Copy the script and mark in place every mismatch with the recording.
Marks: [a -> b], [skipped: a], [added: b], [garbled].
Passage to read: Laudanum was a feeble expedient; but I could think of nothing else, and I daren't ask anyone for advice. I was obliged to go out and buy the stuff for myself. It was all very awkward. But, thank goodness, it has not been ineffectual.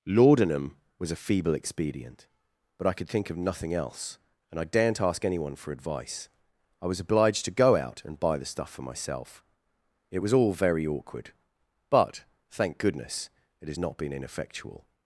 Laudanum was a feeble expedient; but I could think of nothing else, and I daren't ask anyone for advice. I was obliged to go out and buy the stuff for myself. It was all very awkward. But, thank goodness, it has not been ineffectual.